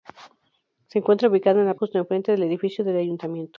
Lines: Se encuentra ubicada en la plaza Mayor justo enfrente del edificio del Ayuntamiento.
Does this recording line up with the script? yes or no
no